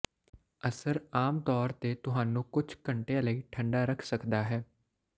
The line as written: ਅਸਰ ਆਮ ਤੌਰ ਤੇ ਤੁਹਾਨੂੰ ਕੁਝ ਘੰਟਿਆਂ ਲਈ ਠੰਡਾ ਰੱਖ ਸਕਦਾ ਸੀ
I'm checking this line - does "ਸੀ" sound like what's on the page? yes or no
no